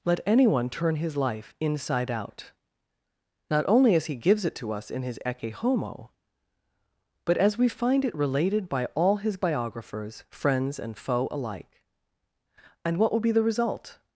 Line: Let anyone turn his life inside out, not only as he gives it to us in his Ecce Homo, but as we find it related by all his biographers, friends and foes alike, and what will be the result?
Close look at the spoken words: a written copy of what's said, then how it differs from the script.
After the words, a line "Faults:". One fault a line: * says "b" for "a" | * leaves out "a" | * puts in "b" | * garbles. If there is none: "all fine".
Let anyone turn his life inside out, not only as he gives it to us in his Ecce Homo, but as we find it related by all his biographers, friends and foe alike, and what will be the result?
Faults:
* says "foe" for "foes"